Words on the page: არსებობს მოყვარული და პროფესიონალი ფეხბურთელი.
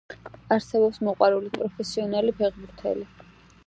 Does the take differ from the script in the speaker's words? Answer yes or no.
no